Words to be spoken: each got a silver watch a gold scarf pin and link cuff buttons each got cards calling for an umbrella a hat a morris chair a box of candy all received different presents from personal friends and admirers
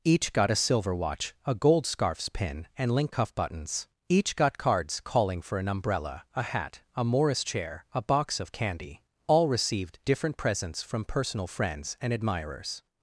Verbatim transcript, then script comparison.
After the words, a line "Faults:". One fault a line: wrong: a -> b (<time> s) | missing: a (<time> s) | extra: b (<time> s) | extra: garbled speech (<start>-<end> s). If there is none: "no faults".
each got a silver watch a gold scarfs pin and link cuff buttons each got cards calling for an umbrella a hat a morris chair a box of candy all received different presents from personal friends and admirers
Faults:
wrong: scarf -> scarfs (1.9 s)